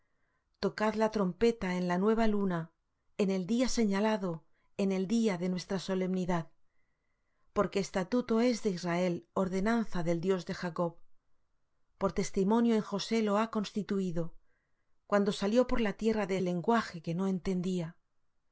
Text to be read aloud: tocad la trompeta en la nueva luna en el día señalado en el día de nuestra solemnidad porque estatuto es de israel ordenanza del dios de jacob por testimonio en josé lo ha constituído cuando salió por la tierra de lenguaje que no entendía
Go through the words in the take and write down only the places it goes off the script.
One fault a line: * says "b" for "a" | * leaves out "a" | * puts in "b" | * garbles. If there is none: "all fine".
all fine